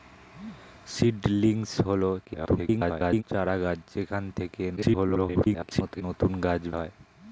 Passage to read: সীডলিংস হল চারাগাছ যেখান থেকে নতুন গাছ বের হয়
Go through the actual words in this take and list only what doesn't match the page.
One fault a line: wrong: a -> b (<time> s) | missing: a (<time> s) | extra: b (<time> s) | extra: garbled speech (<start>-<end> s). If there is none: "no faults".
extra: garbled speech (2.2-3.2 s)
extra: garbled speech (4.8-6.0 s)
missing: বের (6.6 s)